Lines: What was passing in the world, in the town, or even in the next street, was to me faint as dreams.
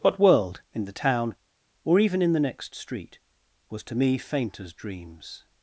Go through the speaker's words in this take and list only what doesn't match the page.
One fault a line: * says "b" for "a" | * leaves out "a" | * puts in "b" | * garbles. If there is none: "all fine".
* leaves out "was passing in the"